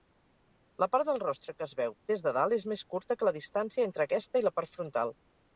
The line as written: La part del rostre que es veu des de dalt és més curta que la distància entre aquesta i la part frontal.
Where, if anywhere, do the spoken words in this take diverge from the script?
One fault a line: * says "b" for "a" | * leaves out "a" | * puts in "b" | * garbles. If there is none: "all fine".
all fine